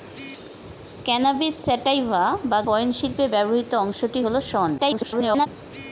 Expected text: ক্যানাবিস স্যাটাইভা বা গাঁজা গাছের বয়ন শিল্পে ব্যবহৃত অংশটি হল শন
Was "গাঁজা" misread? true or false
true